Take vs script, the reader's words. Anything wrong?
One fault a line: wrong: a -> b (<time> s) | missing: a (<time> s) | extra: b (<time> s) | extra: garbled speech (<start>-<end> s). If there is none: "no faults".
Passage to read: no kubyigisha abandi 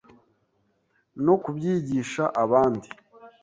no faults